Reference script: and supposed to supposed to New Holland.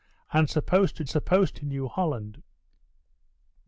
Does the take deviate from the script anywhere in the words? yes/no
no